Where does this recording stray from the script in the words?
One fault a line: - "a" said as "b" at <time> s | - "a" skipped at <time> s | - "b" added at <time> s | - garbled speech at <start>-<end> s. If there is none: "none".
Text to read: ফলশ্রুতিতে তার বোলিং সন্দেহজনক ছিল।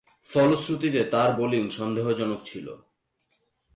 none